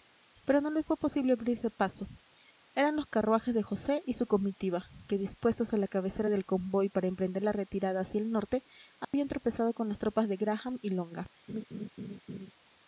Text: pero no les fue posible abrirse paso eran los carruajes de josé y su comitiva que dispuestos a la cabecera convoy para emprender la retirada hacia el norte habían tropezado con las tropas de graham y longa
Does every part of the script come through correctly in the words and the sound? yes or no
no